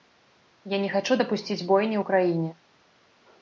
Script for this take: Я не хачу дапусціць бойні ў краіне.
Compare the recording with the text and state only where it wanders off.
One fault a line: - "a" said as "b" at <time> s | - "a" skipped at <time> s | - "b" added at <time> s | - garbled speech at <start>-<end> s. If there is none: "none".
none